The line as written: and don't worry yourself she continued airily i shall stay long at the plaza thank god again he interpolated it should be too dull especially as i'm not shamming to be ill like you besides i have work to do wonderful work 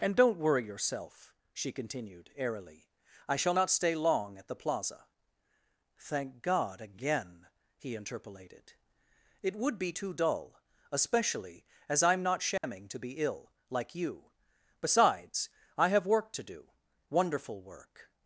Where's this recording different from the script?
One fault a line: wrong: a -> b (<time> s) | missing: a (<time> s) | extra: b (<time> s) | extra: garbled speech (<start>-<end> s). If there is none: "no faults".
extra: not (3.5 s)
wrong: should -> would (9.6 s)